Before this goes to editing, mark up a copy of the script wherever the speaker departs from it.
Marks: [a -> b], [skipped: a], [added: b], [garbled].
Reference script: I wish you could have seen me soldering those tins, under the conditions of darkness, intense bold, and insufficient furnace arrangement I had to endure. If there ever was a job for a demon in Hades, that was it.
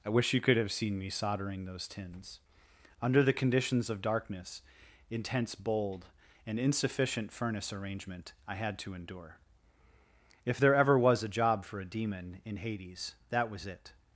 I wish you could have seen me soldering those tins, under the conditions of darkness, intense bold, and insufficient furnace arrangement I had to endure. If there ever was a job for a demon in Hades, that was it.